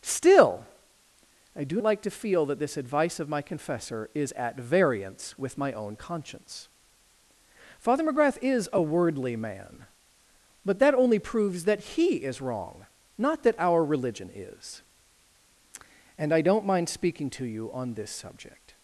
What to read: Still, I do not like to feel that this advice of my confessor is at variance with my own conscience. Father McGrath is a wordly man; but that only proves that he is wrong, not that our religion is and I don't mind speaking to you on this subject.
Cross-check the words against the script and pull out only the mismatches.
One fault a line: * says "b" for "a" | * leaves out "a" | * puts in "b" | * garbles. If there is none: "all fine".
* leaves out "not"